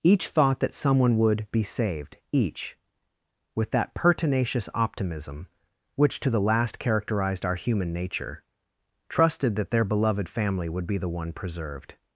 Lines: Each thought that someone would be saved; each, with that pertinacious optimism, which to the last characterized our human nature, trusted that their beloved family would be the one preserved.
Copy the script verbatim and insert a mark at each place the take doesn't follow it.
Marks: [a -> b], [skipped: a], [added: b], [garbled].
Each thought that someone would be saved; each, with that pertinacious optimism, which to the last characterized our human nature, trusted that their beloved family would be the one preserved.